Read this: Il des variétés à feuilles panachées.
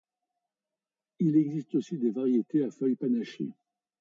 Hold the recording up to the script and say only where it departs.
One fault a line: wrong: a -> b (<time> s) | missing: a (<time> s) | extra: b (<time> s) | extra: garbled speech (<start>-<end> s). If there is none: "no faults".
extra: existe aussi (1.4 s)